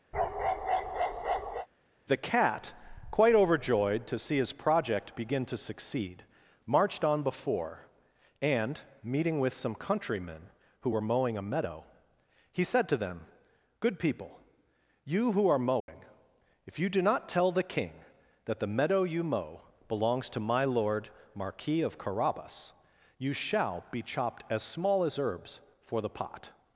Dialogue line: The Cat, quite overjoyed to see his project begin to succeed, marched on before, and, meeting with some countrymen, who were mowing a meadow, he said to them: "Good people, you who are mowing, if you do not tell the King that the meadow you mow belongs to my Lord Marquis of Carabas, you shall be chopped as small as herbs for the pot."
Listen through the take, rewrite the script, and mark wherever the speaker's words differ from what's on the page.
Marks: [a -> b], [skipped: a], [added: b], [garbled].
The Cat, quite overjoyed to see his project begin to succeed, marched on before, and, meeting with some countrymen, who were mowing a meadow, he said to them: "Good people, you who are mowing, if you do not tell the King that the meadow you mow belongs to my Lord Marquis of Carabas, you shall be chopped as small as herbs for the pot."